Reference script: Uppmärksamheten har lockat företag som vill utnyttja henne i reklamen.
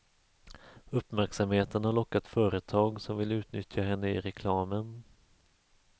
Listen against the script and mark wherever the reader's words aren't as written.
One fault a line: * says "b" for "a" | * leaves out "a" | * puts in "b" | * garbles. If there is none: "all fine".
all fine